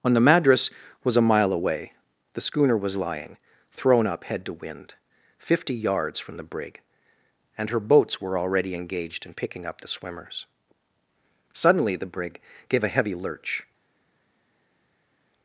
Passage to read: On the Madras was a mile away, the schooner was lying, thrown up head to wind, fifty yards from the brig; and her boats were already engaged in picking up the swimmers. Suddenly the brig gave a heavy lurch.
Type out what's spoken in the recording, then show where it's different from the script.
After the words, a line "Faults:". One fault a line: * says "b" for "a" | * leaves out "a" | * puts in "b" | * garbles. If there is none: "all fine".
On the Madras was a mile away, the schooner was lying, thrown up head to wind, fifty yards from the brig; and her boats were already engaged in picking up the swimmers. Suddenly the brig gave a heavy lurch.
Faults:
all fine